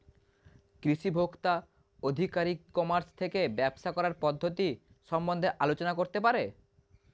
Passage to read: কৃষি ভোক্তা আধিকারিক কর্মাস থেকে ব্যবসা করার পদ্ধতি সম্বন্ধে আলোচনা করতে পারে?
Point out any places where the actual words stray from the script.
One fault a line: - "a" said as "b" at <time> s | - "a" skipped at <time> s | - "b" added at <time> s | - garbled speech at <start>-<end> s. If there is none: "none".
none